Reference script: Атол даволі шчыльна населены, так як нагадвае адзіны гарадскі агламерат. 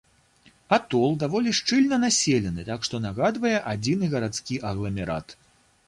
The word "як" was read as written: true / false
false